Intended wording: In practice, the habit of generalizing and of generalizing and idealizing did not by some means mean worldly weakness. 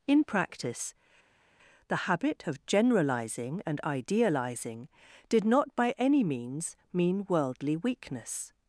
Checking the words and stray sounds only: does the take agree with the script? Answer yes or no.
no